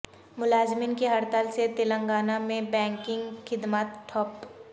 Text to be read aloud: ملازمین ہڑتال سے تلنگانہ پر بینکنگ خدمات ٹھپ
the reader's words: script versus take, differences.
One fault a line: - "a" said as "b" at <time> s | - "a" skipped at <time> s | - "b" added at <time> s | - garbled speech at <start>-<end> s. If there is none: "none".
- "کی" added at 0.9 s
- "پر" said as "میں" at 2.4 s